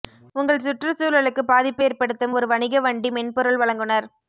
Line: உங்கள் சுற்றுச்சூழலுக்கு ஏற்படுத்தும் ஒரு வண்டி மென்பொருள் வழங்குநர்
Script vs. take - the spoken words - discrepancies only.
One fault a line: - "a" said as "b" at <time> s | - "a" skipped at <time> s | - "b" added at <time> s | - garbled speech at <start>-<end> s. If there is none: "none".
- "பாதிப்பு" added at 1.4 s
- "வணிக" added at 2.5 s